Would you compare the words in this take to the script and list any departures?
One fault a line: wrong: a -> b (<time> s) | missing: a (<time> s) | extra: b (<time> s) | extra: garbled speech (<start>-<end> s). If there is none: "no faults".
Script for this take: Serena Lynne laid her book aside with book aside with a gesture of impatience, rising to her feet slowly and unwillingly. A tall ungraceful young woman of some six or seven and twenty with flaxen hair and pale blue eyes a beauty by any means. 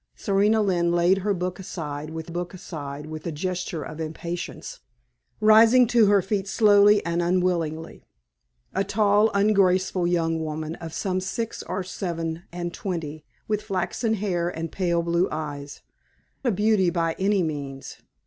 no faults